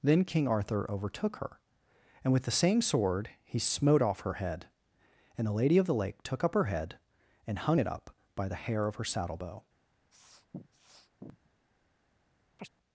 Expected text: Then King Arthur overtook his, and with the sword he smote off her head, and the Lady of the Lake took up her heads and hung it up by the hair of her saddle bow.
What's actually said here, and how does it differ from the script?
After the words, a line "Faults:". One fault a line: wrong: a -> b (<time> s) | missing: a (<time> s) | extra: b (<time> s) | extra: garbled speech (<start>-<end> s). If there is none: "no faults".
Then King Arthur overtook her, and with the same sword he smote off her head, and the Lady of the Lake took up her head and hung it up by the hair of her saddle bow.
Faults:
wrong: his -> her (1.4 s)
extra: same (2.5 s)
wrong: heads -> head (6.7 s)